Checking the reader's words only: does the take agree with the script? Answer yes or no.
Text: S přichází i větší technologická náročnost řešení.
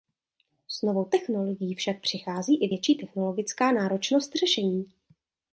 no